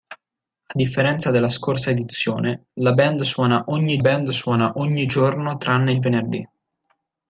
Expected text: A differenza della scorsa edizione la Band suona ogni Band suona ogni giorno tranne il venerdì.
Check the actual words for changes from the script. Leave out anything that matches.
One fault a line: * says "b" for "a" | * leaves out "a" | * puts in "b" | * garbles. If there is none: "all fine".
all fine